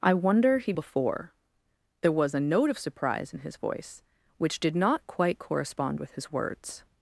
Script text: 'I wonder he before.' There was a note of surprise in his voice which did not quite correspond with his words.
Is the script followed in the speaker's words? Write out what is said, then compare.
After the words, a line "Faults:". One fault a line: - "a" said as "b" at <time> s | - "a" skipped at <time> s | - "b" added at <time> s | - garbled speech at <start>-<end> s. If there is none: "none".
'I wonder he before.' There was a note of surprise in his voice which did not quite correspond with his words.
Faults:
none